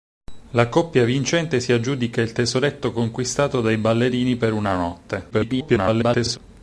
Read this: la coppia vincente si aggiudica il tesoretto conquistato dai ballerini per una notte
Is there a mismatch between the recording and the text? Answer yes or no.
yes